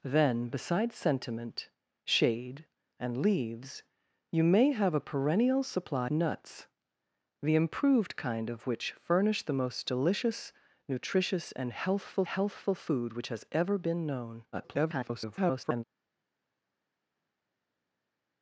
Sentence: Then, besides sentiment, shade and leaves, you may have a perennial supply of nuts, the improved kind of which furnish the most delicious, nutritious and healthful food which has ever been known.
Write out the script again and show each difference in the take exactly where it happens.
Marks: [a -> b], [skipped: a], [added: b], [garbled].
Then, besides sentiment, shade and leaves, you may have a perennial supply [skipped: of] nuts, the improved kind of which furnish the most delicious, nutritious and healthful [added: healthful] food which has ever been known. [garbled]